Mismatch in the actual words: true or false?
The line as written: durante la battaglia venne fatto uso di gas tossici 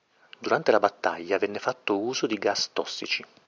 false